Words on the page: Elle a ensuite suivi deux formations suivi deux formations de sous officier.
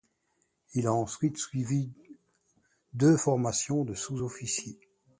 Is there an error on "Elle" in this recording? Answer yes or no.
yes